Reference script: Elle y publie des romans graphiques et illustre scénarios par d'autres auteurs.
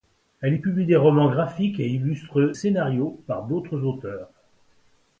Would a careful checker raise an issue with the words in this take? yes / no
no